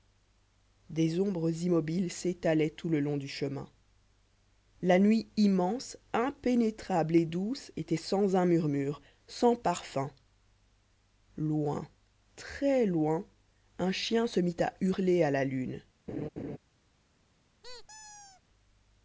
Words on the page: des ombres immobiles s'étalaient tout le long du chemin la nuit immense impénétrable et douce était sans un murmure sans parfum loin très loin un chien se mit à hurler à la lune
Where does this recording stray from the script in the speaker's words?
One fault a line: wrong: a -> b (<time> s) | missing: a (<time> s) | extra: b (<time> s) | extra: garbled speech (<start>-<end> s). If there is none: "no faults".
no faults